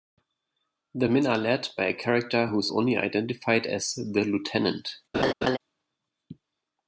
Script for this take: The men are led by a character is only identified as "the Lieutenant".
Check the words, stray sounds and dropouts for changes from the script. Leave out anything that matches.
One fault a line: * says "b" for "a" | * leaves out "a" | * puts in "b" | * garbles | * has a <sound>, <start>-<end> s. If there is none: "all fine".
* puts in "who"
* has a laugh, 5.1-5.6 s